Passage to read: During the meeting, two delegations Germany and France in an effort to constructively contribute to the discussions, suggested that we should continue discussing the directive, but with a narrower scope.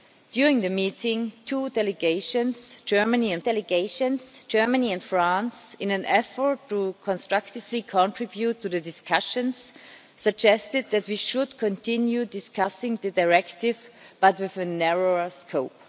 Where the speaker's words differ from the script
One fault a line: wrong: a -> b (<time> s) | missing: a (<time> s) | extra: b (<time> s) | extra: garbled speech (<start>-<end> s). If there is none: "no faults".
extra: delegations Germany and (3.4 s)